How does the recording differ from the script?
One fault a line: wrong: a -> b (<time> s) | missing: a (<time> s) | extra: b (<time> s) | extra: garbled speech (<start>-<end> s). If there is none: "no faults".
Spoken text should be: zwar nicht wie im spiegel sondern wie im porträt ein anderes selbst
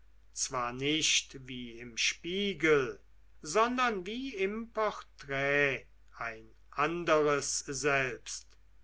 no faults